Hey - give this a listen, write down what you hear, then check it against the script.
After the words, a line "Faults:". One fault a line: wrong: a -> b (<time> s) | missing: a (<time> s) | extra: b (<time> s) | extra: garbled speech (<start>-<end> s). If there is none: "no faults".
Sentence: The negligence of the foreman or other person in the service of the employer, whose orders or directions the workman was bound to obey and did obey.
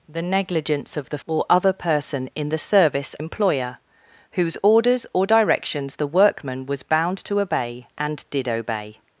The negligence of the or other person in the service employer, whose orders or directions the workman was bound to obey and did obey.
Faults:
missing: foreman (1.2 s)
missing: of the (3.1 s)